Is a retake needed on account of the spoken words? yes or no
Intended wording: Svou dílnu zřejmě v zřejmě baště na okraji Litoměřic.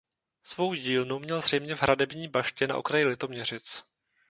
yes